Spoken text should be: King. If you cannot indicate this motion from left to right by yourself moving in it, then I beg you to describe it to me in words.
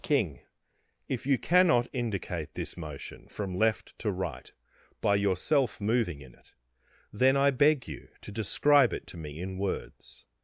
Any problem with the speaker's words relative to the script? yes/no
no